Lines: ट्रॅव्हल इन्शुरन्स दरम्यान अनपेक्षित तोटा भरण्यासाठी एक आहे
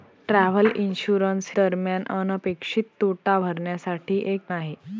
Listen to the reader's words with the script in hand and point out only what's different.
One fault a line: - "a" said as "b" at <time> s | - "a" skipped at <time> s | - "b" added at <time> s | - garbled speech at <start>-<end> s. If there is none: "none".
none